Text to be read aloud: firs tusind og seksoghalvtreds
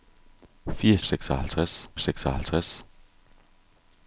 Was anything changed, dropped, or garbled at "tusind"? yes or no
yes